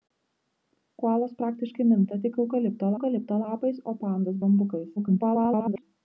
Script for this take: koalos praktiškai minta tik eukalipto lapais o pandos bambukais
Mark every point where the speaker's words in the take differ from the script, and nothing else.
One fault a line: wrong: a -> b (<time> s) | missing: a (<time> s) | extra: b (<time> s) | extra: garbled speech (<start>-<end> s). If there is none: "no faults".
extra: eukalipto (3.0 s)
extra: garbled speech (5.0-5.8 s)